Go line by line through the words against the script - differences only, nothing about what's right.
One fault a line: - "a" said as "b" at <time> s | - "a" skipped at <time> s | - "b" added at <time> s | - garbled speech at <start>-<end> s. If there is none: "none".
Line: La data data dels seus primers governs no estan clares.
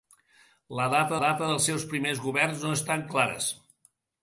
none